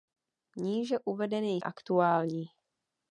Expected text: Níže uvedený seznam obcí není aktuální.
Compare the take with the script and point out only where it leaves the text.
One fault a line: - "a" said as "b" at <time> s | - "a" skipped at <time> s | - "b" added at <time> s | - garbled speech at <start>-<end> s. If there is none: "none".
- "seznam obcí není" skipped at 1.6 s